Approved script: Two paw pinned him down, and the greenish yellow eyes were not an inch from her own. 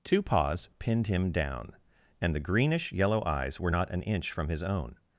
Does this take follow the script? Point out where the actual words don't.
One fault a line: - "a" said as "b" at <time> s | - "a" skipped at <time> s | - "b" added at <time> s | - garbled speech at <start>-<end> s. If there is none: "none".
- "paw" said as "paws" at 0.2 s
- "her" said as "his" at 4.5 s